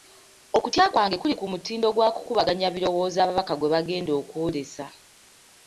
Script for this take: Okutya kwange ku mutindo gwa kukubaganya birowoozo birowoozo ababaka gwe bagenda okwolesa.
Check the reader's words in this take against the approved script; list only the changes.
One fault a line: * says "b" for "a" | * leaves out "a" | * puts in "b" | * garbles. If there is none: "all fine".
* puts in "kuli"
* leaves out "birowoozo"